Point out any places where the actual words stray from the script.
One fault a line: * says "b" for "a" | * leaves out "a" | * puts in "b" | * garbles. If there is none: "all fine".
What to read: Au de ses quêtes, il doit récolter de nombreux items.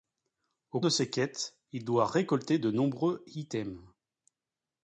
all fine